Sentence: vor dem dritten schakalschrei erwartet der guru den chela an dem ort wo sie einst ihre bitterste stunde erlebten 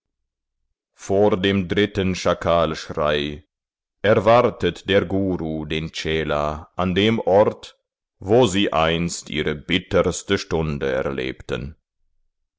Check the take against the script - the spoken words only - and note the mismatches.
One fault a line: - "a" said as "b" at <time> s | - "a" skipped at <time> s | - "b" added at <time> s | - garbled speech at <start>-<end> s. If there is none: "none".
none